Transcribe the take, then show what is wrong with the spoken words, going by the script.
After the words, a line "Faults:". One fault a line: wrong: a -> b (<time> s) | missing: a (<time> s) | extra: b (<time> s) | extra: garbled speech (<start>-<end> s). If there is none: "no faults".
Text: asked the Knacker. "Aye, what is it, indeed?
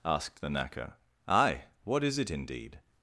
asked the Knacker. "Aye, what is it, indeed?
Faults:
no faults